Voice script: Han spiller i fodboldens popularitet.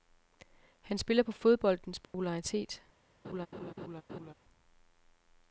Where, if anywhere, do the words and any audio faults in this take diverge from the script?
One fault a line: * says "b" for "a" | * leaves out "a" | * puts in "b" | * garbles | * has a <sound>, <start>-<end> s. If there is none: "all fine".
* says "på" for "i"
* has a dropout, 2.0-2.1 s
* has a laugh, 3.2-4.3 s